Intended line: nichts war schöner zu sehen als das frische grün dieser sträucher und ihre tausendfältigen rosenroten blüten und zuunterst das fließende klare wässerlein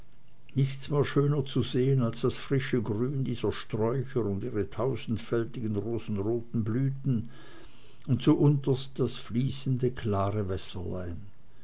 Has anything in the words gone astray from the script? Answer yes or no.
no